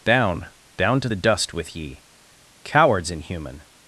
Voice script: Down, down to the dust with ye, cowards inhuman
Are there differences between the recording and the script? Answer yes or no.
no